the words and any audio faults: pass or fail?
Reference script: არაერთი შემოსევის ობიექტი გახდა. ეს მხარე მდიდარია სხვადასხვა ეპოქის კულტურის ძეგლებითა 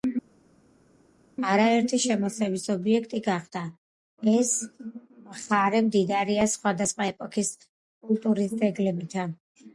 pass